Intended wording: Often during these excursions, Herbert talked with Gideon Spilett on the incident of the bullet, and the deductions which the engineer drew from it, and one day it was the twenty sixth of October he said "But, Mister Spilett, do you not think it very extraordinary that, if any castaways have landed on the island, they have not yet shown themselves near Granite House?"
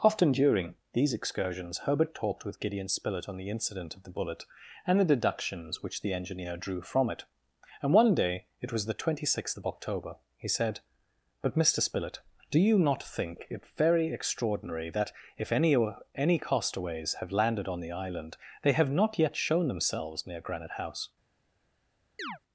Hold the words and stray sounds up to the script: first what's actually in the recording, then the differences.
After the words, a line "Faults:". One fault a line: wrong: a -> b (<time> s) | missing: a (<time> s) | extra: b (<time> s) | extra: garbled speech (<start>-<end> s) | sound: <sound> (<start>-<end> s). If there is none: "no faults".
Often during these excursions, Herbert talked with Gideon Spilett on the incident of the bullet, and the deductions which the engineer drew from it, and one day it was the twenty sixth of October he said "But, Mister Spilett, do you not think it very extraordinary that, if any any castaways have landed on the island, they have not yet shown themselves near Granite House?"
Faults:
extra: any (16.2 s)
sound: chirp (22.2-22.4 s)